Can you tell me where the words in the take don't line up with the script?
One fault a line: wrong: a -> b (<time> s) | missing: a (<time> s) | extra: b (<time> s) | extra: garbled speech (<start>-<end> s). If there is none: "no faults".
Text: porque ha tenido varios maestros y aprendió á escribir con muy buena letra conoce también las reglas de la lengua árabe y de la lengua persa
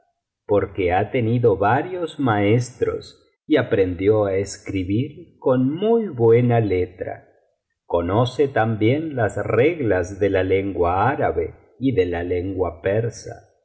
no faults